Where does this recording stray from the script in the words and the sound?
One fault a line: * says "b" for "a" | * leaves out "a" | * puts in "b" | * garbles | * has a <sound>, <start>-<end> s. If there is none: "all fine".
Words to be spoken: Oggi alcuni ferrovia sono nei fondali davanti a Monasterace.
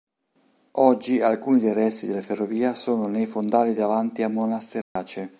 * puts in "dei resti della"
* has a dropout, 4.8-5.0 s